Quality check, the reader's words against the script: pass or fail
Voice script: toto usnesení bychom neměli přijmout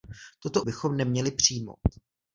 fail